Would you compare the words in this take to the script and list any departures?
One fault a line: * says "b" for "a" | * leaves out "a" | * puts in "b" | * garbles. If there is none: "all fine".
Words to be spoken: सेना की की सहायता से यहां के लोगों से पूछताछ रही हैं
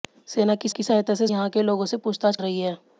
all fine